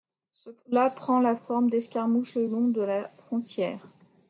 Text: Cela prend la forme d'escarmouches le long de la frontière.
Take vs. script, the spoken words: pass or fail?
pass